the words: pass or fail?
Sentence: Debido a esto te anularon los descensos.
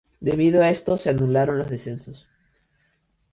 fail